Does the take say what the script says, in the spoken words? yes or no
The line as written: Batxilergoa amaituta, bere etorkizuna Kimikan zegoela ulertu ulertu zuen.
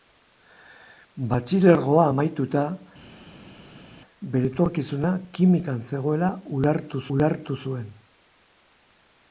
yes